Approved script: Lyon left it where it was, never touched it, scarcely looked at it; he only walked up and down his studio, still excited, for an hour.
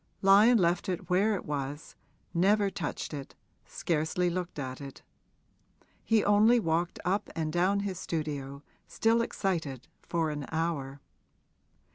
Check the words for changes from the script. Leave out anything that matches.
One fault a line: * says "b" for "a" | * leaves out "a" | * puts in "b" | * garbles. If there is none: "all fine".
all fine